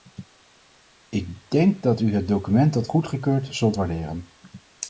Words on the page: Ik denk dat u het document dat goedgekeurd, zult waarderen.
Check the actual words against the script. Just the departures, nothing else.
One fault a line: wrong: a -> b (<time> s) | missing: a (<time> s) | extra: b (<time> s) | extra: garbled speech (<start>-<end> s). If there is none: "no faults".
no faults